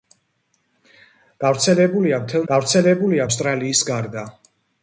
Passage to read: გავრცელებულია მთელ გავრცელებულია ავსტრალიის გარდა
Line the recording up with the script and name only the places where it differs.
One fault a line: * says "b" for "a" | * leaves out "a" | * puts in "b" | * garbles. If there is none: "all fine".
all fine